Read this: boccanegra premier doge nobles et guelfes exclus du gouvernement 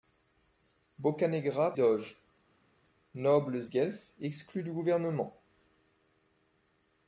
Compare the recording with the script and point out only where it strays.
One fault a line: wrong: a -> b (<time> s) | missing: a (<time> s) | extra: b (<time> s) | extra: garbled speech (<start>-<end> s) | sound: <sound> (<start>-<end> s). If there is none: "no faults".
missing: premier (1.7 s)
missing: et (3.7 s)